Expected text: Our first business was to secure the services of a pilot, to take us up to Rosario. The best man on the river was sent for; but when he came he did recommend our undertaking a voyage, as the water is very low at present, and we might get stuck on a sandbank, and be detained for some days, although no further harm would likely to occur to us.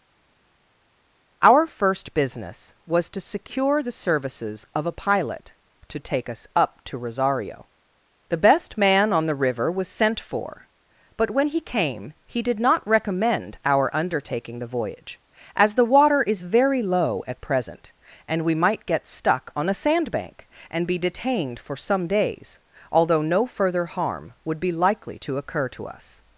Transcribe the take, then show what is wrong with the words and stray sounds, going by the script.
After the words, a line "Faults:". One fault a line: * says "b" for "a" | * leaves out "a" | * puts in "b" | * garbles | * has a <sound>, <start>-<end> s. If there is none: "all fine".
Our first business was to secure the services of a pilot, to take us up to Rosario. The best man on the river was sent for; but when he came he did not recommend our undertaking the voyage, as the water is very low at present, and we might get stuck on a sandbank, and be detained for some days, although no further harm would be likely to occur to us.
Faults:
* puts in "not"
* says "the" for "a"
* puts in "be"